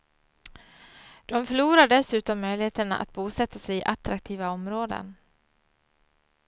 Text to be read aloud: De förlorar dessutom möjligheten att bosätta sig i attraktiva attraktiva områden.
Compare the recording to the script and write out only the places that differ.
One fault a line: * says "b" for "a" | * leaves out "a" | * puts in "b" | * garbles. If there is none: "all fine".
* leaves out "attraktiva"